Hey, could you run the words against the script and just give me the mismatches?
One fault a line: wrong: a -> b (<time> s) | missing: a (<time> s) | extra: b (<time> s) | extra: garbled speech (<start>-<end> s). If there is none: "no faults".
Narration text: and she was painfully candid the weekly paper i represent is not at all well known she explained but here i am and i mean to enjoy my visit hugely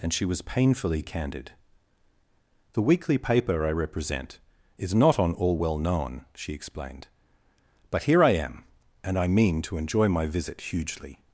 wrong: at -> on (5.2 s)